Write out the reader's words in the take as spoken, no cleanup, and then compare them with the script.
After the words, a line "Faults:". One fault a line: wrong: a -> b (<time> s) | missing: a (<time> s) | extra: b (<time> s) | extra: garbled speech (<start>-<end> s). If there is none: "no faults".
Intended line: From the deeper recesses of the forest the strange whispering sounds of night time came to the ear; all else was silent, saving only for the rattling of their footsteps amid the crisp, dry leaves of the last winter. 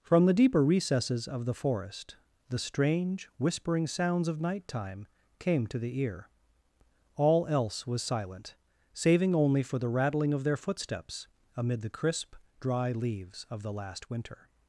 From the deeper recesses of the forest the strange whispering sounds of night time came to the ear; all else was silent, saving only for the rattling of their footsteps amid the crisp, dry leaves of the last winter.
Faults:
no faults